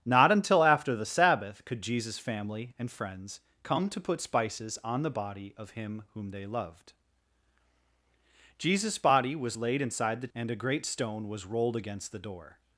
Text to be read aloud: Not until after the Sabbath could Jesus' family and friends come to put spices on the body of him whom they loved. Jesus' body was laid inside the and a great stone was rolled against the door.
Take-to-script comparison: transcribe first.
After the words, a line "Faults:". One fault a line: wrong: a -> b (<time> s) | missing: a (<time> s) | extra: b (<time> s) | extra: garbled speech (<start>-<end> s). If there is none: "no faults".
Not until after the Sabbath could Jesus' family and friends come to put spices on the body of him whom they loved. Jesus' body was laid inside the and a great stone was rolled against the door.
Faults:
no faults